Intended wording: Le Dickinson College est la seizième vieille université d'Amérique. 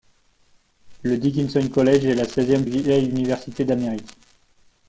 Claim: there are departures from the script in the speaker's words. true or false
false